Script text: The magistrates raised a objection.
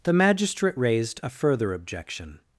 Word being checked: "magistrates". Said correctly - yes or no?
no